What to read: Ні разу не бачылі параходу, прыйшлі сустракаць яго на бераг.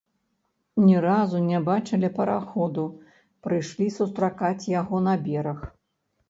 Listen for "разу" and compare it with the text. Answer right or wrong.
right